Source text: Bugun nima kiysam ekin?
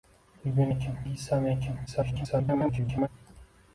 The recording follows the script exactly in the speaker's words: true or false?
false